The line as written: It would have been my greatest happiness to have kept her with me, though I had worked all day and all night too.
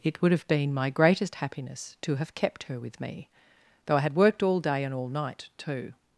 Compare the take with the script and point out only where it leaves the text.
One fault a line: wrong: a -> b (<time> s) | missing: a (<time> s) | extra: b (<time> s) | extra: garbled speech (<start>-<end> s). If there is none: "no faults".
no faults